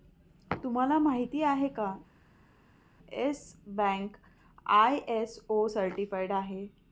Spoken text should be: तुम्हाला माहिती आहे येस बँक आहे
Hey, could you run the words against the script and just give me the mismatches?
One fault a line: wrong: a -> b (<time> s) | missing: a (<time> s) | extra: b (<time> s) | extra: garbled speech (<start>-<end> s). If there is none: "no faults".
extra: का (1.7 s)
extra: आय.एस.ओ सर्टिफाइड (4.7 s)